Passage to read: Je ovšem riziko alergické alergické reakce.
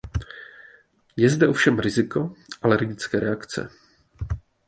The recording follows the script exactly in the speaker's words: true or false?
false